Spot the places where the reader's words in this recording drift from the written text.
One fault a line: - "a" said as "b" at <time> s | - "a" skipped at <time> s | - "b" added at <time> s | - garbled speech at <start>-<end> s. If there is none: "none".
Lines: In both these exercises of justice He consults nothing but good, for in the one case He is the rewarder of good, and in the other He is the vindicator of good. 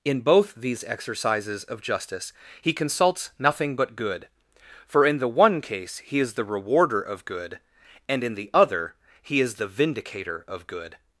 none